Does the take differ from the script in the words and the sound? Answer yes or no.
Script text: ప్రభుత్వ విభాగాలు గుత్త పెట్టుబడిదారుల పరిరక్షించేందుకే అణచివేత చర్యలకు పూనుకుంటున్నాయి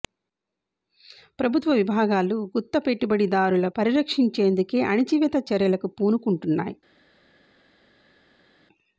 no